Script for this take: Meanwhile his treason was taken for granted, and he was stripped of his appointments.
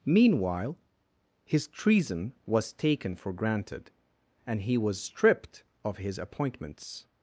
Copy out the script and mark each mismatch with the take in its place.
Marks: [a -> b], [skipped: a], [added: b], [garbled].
Meanwhile his treason was taken for granted, and he was stripped of his appointments.